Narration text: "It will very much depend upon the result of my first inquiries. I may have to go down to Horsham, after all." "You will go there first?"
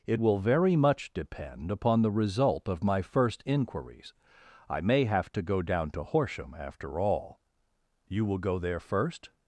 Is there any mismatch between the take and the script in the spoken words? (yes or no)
no